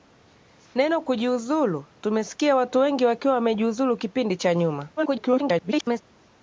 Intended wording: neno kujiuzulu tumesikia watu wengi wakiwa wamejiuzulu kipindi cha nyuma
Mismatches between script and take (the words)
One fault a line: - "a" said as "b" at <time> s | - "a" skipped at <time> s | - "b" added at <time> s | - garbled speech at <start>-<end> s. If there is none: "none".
- garbled speech at 5.0-6.0 s